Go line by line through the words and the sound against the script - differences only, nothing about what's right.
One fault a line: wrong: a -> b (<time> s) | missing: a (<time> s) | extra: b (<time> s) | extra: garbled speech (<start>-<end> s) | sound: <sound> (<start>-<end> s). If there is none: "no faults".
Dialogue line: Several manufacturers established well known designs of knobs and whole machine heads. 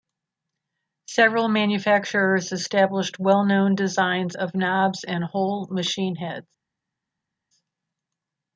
no faults